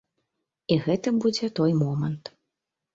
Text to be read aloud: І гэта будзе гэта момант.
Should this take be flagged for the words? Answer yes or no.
yes